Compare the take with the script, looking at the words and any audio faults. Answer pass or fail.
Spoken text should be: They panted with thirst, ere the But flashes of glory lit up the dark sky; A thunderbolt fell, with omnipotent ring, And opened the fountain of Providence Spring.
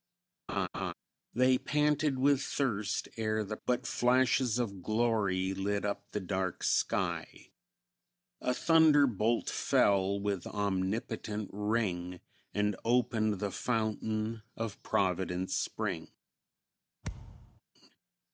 fail